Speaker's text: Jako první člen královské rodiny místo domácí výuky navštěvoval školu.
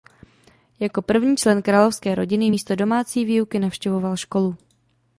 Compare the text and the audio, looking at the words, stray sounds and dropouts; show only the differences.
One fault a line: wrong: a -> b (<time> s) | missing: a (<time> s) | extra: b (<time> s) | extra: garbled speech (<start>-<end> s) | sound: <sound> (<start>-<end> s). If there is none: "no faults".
no faults